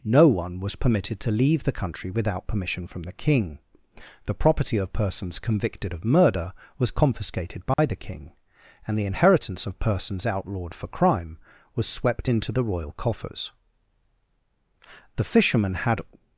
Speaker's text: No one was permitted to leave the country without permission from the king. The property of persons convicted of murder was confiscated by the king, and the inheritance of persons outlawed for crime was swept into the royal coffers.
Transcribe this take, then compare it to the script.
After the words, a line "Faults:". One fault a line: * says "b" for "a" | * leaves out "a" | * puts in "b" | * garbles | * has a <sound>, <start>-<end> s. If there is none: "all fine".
No one was permitted to leave the country without permission from the king. The property of persons convicted of murder was confiscated by the king, and the inheritance of persons outlawed for crime was swept into the royal coffers. The fishermen had
Faults:
* has a dropout, 7.7-7.8 s
* puts in "The fishermen had"